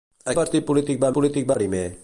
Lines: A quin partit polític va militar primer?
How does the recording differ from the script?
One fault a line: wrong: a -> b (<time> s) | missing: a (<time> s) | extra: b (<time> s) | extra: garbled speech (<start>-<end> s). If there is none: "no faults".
missing: quin (0.3 s)
wrong: militar -> polític (1.2 s)